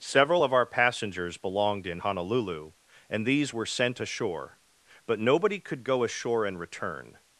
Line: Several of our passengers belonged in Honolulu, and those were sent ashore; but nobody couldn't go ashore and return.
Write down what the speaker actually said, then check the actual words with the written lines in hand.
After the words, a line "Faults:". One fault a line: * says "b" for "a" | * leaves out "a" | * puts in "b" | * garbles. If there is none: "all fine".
Several of our passengers belonged in Honolulu, and these were sent ashore; but nobody could go ashore and return.
Faults:
* says "these" for "those"
* says "could" for "couldn't"